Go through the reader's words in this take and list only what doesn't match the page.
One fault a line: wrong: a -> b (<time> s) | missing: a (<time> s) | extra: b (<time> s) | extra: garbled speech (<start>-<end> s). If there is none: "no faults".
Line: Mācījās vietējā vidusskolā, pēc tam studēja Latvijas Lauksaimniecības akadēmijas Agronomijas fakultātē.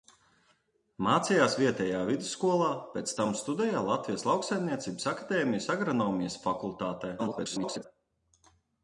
extra: garbled speech (7.2-7.8 s)